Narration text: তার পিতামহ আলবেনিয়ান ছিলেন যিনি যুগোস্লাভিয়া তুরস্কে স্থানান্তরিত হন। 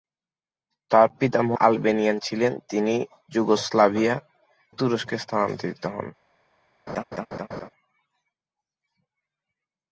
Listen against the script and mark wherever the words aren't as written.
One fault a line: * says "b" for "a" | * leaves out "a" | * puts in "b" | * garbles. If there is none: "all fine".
all fine